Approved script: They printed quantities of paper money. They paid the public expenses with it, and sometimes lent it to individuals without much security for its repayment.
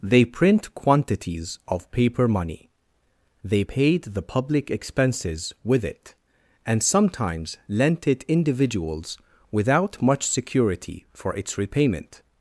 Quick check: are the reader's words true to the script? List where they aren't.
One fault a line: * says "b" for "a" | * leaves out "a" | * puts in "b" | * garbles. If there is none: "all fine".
* says "print" for "printed"
* leaves out "to"